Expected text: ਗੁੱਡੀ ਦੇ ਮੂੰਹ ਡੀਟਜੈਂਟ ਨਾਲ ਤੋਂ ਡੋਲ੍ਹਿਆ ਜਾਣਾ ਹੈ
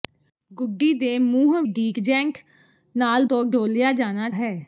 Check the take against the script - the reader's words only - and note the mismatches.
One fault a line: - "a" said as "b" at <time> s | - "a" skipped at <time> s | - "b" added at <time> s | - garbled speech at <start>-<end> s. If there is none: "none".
none